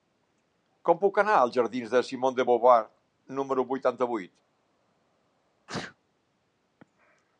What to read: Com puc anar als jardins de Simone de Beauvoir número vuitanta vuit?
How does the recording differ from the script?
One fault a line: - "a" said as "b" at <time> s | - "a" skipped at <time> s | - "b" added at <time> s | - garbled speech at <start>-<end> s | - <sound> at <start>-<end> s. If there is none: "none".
- sneeze at 5.7-6.0 s